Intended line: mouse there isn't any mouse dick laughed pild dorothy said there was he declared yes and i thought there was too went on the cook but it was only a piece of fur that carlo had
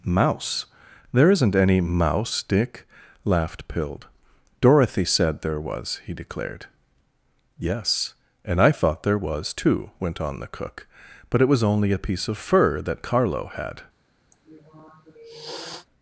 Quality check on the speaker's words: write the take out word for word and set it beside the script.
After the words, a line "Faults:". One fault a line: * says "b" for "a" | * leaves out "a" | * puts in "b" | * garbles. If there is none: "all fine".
mouse there isn't any mouse dick laughed pild dorothy said there was he declared yes and i thought there was too went on the cook but it was only a piece of fur that carlo had
Faults:
all fine